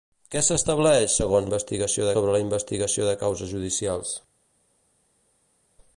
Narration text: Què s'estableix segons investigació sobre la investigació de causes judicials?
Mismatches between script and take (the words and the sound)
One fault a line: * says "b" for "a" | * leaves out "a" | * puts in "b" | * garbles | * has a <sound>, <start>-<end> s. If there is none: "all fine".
all fine